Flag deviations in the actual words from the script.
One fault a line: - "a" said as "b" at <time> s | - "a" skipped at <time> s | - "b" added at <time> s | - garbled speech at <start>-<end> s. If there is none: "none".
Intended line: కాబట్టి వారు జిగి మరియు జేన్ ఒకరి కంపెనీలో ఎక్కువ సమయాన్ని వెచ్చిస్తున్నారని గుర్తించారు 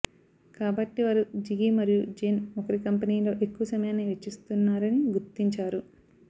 none